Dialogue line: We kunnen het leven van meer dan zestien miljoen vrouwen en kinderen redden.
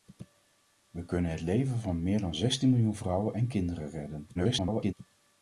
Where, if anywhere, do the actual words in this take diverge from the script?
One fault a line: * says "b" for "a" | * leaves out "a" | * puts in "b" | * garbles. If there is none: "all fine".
* garbles